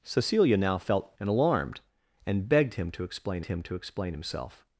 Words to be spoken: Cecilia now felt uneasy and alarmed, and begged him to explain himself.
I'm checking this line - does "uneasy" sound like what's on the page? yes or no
no